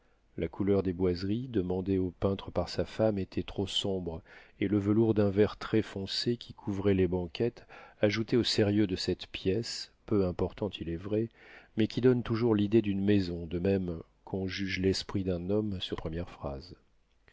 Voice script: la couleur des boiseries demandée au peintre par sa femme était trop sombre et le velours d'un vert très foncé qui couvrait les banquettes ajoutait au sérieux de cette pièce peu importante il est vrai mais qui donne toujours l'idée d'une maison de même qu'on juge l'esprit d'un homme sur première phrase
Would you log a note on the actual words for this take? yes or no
no